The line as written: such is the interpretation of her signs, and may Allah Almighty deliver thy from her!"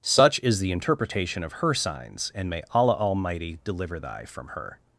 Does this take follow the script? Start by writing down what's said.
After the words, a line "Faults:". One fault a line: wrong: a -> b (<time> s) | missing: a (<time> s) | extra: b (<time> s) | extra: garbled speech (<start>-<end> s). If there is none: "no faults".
such is the interpretation of her signs, and may Allah Almighty deliver thy from her!"
Faults:
no faults